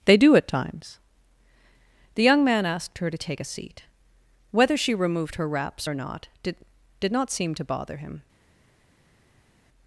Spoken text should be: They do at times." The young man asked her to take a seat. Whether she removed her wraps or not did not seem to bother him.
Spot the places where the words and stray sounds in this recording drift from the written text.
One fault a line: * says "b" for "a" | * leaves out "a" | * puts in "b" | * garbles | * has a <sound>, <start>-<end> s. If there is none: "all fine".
* puts in "did"